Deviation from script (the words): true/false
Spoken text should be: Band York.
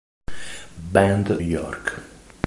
false